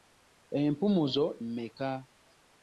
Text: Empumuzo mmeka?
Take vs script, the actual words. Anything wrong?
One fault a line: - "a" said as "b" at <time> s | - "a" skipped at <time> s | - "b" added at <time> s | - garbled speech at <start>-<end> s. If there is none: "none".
none